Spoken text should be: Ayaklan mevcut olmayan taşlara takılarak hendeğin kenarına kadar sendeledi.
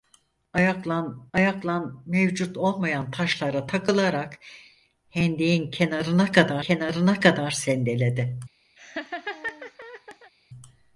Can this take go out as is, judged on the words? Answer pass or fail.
fail